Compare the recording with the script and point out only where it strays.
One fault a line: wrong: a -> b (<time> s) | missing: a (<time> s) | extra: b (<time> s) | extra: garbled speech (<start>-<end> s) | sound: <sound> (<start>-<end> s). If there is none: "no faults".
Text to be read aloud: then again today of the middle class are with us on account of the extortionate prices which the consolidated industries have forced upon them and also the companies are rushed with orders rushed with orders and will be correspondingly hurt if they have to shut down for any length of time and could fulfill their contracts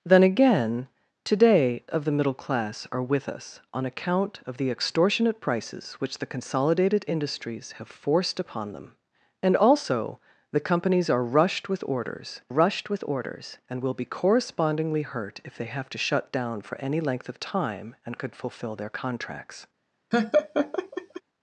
sound: laugh (20.1-21.2 s)